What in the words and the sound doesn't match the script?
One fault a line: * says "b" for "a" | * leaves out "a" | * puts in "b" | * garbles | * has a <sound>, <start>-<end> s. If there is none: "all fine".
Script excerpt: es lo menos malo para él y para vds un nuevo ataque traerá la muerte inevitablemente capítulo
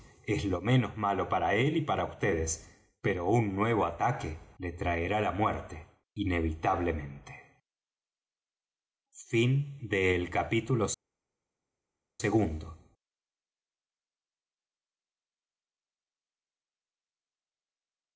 * puts in "pero"
* puts in "le"